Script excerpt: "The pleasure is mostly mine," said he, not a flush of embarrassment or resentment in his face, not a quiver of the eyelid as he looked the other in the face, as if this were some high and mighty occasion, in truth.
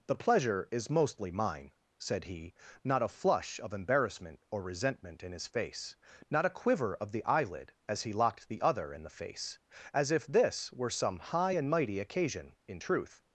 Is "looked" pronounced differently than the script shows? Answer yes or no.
yes